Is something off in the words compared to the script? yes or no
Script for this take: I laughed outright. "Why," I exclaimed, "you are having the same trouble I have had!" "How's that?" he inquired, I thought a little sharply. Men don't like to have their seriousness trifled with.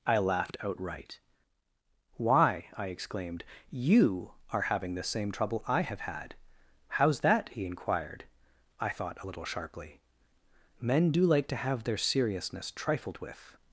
yes